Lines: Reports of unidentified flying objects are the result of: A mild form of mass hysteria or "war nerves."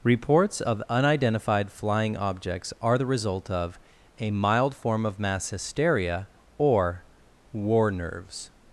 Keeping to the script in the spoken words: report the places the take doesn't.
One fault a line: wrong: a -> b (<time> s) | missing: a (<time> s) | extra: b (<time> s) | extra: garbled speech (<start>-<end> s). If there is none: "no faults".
no faults